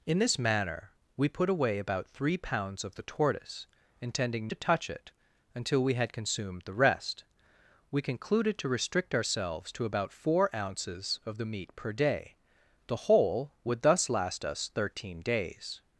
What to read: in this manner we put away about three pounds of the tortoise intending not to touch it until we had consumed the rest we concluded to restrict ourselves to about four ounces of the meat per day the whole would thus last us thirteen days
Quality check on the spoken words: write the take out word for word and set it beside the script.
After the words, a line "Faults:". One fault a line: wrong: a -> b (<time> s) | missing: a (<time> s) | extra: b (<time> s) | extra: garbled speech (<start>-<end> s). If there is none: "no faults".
in this manner we put away about three pounds of the tortoise intending to touch it until we had consumed the rest we concluded to restrict ourselves to about four ounces of the meat per day the whole would thus last us thirteen days
Faults:
missing: not (4.5 s)